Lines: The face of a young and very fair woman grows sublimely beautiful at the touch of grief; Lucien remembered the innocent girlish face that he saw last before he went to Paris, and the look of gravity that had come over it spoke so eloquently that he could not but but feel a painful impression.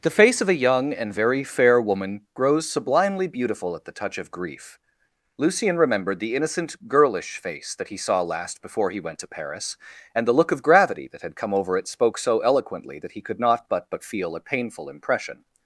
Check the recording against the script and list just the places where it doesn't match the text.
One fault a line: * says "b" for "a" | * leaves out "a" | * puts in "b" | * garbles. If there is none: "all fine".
all fine